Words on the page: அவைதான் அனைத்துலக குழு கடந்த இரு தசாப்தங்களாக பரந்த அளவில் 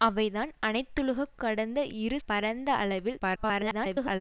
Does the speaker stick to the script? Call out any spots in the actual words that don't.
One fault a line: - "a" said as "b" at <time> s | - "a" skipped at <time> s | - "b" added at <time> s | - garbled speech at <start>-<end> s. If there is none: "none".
- "குழு" skipped at 1.2 s
- "தசாப்தங்களாக" skipped at 2.2 s
- garbled speech at 3.2-4.2 s